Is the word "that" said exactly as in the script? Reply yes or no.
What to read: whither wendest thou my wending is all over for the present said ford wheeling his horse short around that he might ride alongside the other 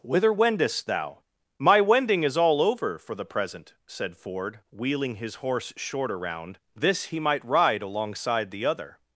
no